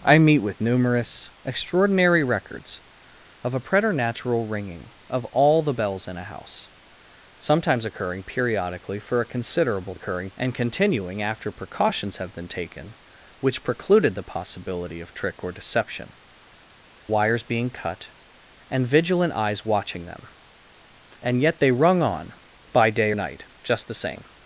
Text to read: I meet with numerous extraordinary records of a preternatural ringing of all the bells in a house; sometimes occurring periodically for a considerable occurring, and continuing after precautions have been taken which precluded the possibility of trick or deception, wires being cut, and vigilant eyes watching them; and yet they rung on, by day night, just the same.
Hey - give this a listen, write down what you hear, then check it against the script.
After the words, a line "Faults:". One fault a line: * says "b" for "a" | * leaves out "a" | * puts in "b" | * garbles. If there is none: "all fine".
I meet with numerous extraordinary records of a preternatural ringing of all the bells in a house; sometimes occurring periodically for a considerable occurring, and continuing after precautions have been taken which precluded the possibility of trick or deception, wires being cut, and vigilant eyes watching them; and yet they rung on, by day night, just the same.
Faults:
all fine